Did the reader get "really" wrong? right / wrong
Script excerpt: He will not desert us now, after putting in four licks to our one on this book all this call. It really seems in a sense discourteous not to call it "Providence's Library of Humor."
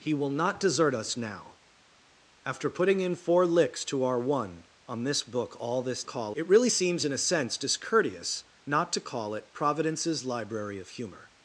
right